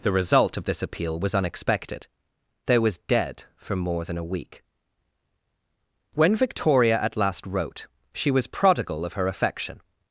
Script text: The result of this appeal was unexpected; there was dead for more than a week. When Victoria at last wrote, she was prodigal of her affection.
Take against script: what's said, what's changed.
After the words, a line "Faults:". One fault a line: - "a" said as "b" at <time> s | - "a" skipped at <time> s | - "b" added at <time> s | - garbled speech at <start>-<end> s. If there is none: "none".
The result of this appeal was unexpected; there was dead for more than a week. When Victoria at last wrote, she was prodigal of her affection.
Faults:
none